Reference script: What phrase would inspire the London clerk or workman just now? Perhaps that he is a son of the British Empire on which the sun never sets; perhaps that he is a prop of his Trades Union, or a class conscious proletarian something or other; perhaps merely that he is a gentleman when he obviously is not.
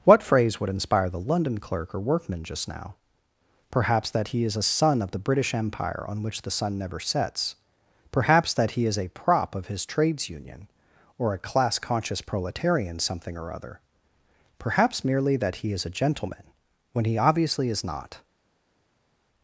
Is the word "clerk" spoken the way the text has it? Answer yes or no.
yes